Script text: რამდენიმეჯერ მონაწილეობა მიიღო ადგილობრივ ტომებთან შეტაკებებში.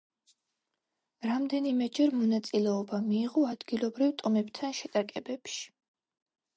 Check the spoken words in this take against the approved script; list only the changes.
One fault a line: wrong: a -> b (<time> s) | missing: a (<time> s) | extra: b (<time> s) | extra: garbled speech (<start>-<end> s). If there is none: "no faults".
no faults